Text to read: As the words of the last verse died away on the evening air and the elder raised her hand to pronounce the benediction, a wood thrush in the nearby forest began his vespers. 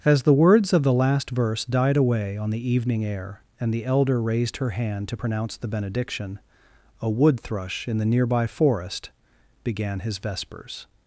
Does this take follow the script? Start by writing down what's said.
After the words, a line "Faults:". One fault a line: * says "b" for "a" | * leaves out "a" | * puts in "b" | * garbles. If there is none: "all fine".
As the words of the last verse died away on the evening air and the elder raised her hand to pronounce the benediction, a wood thrush in the nearby forest began his vespers.
Faults:
all fine